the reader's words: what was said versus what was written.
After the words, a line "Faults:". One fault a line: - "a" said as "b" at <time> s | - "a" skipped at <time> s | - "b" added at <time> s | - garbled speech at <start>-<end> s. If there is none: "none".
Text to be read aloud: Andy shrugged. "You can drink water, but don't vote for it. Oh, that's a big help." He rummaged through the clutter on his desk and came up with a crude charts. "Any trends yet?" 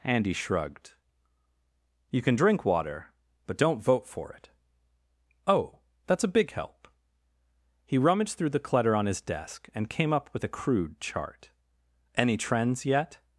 Andy shrugged. "You can drink water, but don't vote for it. Oh, that's a big help." He rummaged through the clutter on his desk and came up with a crude chart. "Any trends yet?"
Faults:
- "charts" said as "chart" at 11.0 s